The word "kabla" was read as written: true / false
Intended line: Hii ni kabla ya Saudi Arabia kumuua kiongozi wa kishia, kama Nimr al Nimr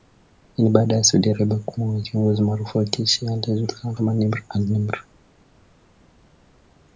false